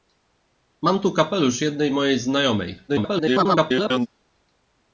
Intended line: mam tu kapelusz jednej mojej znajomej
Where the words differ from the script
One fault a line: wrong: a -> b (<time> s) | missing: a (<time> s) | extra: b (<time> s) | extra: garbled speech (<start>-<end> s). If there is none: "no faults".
extra: garbled speech (2.9-4.1 s)